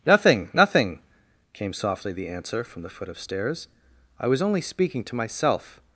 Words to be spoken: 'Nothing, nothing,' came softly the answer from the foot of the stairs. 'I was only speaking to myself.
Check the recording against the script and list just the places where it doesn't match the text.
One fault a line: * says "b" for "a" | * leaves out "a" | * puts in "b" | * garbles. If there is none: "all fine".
* leaves out "the"